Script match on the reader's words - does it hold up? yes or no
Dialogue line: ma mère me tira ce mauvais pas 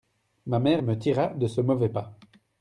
no